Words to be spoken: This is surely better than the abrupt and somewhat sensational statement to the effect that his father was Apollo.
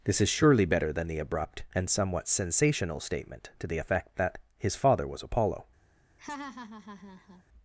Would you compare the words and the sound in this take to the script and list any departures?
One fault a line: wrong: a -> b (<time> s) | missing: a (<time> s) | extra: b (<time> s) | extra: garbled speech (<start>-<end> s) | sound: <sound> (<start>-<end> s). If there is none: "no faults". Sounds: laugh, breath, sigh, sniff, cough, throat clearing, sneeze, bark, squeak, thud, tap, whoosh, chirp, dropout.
sound: laugh (6.2-7.4 s)